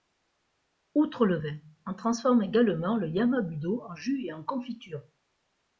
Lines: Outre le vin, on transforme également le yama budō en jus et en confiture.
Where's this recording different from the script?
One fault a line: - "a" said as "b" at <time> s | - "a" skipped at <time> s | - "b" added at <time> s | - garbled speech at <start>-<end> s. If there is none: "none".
none